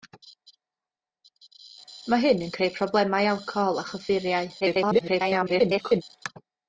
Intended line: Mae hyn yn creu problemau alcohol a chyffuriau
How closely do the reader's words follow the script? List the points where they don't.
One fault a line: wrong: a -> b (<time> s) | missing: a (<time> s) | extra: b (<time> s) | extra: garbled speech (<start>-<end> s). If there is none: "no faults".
extra: garbled speech (4.6-6.0 s)